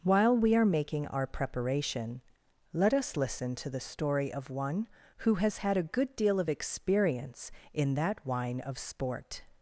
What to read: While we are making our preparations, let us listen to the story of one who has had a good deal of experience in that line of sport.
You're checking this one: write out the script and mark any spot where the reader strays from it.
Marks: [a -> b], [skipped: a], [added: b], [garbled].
While we are making our [preparations, -> preparation] let us listen to the story of one who has had a good deal of experience in that [line -> wine] of sport.